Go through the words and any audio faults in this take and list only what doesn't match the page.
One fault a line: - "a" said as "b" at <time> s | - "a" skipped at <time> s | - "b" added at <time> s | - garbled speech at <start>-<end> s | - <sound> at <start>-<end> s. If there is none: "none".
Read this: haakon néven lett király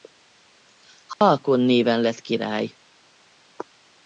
- dropout at 1.1-1.2 s